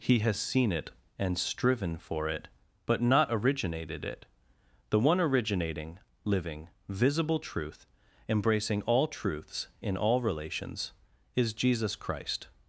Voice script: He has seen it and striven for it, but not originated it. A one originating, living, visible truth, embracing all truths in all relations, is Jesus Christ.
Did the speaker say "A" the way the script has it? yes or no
no